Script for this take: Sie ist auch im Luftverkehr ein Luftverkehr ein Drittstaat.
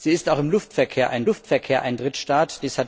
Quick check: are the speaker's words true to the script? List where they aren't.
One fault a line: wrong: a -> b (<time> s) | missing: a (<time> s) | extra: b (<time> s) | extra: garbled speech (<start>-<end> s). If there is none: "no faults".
no faults